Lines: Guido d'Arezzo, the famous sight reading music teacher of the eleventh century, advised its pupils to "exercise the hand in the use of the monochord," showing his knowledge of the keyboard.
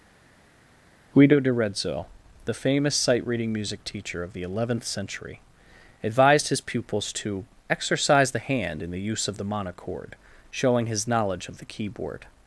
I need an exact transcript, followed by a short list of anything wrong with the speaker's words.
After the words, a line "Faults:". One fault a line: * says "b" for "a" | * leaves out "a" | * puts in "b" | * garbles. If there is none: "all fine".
Guido d'Arezzo, the famous sight reading music teacher of the eleventh century, advised his pupils to "exercise the hand in the use of the monochord," showing his knowledge of the keyboard.
Faults:
* says "his" for "its"